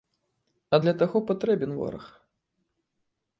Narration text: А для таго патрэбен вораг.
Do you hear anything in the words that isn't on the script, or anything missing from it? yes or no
no